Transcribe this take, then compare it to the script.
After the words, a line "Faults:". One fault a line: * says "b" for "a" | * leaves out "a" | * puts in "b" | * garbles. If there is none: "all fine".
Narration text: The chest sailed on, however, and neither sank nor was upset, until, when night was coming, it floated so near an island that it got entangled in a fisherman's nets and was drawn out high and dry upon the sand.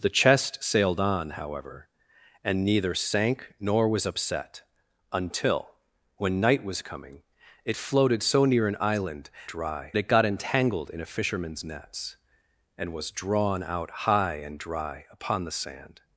The chest sailed on, however, and neither sank nor was upset, until, when night was coming, it floated so near an island dry it got entangled in a fisherman's nets and was drawn out high and dry upon the sand.
Faults:
* says "dry" for "that"